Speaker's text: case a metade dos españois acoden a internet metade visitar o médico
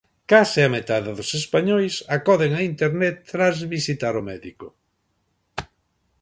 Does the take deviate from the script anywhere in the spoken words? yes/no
yes